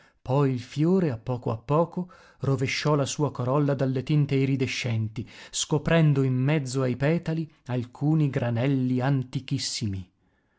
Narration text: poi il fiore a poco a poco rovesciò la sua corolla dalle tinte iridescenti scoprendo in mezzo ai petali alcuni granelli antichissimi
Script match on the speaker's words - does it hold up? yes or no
yes